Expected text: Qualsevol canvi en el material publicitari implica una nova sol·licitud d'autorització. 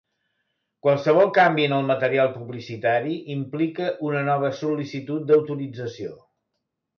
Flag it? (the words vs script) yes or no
no